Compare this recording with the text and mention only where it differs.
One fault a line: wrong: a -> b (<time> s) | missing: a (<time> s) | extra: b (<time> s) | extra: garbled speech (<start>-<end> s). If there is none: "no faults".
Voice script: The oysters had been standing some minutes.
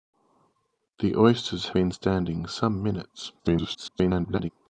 missing: had (1.7 s)
extra: garbled speech (3.4-4.5 s)